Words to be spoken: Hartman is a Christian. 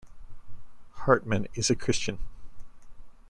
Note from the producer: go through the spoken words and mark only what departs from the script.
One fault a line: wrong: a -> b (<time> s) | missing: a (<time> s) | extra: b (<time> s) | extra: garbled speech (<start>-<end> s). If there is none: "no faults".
no faults